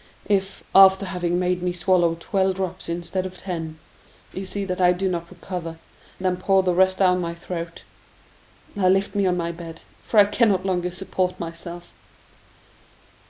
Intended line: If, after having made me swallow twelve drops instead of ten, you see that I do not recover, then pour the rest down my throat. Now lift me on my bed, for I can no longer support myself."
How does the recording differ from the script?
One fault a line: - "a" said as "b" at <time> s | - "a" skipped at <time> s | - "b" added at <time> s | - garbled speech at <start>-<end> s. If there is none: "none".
none